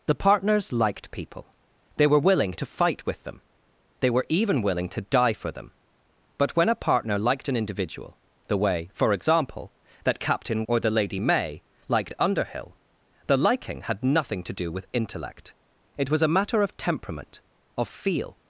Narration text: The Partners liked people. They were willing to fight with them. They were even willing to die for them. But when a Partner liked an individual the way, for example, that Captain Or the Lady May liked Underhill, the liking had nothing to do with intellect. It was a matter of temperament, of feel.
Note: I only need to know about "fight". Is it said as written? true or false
true